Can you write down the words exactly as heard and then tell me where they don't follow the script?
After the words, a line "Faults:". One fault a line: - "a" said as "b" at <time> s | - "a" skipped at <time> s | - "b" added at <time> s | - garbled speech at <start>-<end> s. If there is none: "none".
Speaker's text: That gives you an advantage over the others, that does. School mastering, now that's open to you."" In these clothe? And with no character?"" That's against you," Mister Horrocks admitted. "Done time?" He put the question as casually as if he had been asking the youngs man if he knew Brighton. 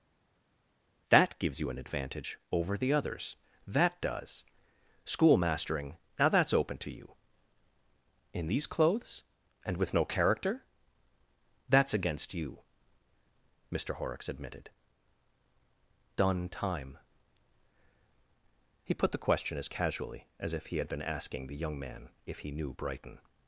That gives you an advantage over the others, that does. School mastering, now that's open to you."" In these clothes? And with no character?"" That's against you," Mister Horrocks admitted. "Done time?" He put the question as casually as if he had been asking the young man if he knew Brighton.
Faults:
- "clothe" said as "clothes" at 8.7 s
- "youngs" said as "young" at 21.6 s